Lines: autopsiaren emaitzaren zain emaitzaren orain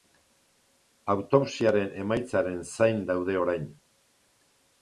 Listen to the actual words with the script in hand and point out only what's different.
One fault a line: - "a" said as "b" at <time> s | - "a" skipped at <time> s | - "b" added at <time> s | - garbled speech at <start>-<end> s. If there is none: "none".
- "emaitzaren" said as "daude" at 3.1 s